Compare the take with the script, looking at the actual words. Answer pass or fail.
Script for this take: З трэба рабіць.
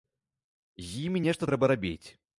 fail